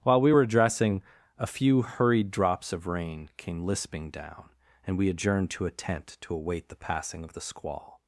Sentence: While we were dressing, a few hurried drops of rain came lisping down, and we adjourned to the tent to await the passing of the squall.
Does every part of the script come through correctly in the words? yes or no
no